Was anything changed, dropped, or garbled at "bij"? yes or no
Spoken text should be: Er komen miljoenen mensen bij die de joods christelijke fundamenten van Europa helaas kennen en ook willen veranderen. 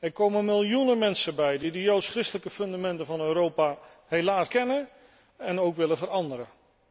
no